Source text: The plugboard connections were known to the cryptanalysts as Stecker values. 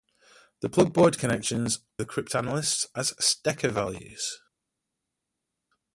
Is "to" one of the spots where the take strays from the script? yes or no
yes